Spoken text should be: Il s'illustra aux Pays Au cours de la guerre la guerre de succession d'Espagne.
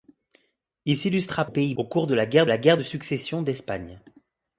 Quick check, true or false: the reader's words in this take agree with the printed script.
true